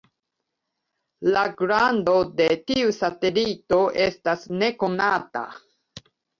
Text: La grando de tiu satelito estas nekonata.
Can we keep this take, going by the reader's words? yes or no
yes